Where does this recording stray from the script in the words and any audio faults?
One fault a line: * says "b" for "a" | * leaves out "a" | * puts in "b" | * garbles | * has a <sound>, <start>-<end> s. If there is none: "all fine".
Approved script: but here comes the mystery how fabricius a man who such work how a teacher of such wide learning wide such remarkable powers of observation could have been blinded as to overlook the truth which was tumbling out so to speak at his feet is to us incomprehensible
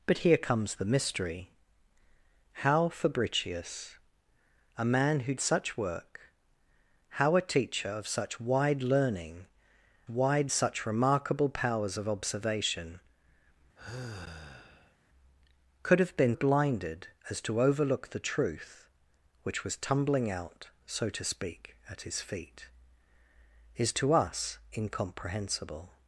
* has a sigh, 13.8-15.0 s